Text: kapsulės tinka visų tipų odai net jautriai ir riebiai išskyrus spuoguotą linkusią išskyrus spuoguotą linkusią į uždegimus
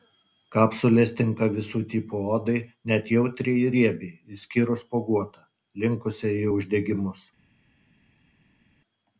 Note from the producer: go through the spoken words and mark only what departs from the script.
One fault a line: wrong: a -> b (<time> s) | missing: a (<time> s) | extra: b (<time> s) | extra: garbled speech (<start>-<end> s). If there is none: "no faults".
missing: išskyrus spuoguotą linkusią (6.3 s)